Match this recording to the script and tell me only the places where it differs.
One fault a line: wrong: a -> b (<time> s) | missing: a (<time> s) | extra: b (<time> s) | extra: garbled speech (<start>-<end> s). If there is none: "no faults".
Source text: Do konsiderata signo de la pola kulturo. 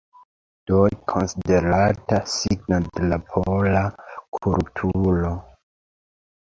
no faults